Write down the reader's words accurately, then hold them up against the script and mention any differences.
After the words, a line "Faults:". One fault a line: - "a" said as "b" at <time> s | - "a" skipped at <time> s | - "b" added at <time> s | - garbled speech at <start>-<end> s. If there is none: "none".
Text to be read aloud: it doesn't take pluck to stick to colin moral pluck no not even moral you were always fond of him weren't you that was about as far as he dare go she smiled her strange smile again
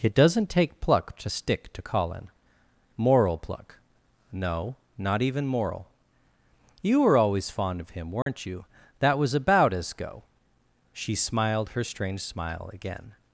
it doesn't take pluck to stick to colin moral pluck no not even moral you were always fond of him weren't you that was about as go she smiled her strange smile again
Faults:
- "far as he dare" skipped at 9.9 s